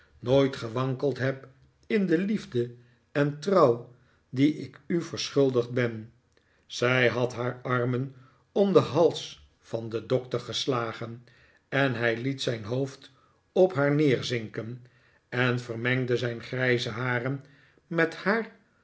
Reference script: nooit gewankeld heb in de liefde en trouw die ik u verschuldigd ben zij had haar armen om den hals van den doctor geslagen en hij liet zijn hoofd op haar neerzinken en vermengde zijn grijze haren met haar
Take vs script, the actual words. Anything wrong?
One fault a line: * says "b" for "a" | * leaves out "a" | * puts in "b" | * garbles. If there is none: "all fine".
all fine